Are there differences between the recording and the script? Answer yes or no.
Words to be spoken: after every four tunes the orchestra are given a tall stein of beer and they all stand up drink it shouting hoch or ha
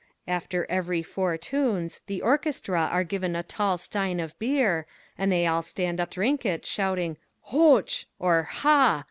no